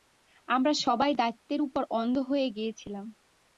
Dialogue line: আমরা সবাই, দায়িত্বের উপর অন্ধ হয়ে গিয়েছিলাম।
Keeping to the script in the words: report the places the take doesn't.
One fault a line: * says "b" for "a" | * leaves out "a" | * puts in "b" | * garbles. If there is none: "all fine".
all fine